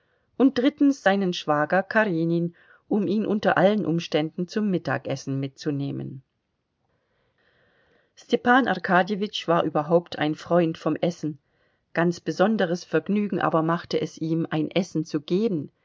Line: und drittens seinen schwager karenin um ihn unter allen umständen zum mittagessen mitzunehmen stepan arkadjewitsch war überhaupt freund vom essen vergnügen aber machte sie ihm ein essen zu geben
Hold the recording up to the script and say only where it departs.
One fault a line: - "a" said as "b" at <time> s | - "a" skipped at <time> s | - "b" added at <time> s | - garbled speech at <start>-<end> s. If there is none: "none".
- "ein" added at 10.2 s
- "ganz besonderes" added at 11.9 s
- "sie" said as "es" at 14.0 s